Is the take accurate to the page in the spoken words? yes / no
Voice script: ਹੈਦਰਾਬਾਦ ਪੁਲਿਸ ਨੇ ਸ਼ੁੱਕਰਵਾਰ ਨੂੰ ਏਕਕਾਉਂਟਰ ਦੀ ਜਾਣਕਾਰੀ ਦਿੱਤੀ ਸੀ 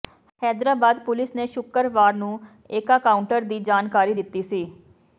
yes